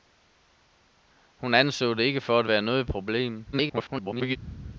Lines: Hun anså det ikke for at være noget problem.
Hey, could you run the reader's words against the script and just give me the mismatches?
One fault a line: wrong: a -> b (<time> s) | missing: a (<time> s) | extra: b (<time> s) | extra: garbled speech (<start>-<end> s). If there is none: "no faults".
extra: garbled speech (3.5-4.4 s)